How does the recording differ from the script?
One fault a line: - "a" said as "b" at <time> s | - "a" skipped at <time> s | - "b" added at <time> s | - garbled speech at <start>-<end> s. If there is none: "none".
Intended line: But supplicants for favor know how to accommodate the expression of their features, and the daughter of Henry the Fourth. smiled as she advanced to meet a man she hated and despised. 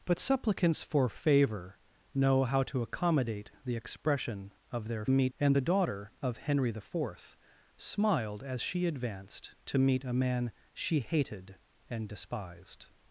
- "features" said as "meet" at 5.1 s